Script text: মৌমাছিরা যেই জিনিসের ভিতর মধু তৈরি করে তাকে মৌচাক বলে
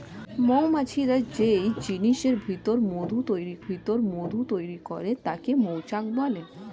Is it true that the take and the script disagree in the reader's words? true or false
true